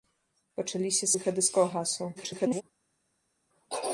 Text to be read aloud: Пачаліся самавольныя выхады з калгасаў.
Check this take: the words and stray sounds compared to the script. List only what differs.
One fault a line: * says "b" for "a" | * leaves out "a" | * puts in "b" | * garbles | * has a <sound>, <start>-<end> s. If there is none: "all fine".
* leaves out "самавольныя"
* garbles